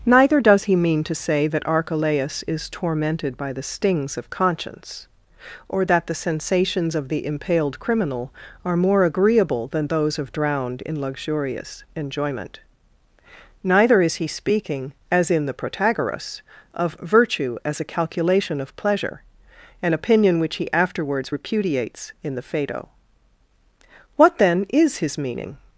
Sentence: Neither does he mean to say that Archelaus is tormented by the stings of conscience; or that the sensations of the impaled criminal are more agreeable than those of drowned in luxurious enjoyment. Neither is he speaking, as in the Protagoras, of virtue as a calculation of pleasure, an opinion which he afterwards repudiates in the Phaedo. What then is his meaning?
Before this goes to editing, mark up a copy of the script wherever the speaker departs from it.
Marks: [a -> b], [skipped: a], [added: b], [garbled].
Neither does he mean to say that Archelaus is tormented by the stings of conscience; or that the sensations of the impaled criminal are more agreeable than those of drowned in luxurious enjoyment. Neither is he speaking, as in the Protagoras, of virtue as a calculation of pleasure, an opinion which he afterwards repudiates in the Phaedo. What then is his meaning?